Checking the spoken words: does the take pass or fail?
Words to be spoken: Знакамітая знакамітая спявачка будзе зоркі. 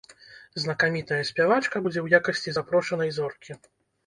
fail